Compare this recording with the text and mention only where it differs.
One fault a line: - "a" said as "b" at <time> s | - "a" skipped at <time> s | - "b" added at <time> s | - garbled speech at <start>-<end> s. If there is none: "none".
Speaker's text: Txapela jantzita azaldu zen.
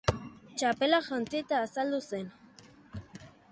none